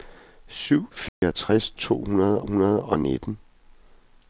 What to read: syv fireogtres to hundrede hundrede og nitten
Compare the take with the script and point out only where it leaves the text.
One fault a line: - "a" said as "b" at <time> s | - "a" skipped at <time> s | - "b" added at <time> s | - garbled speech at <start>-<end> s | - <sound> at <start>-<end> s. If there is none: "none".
- dropout at 1.1-1.2 s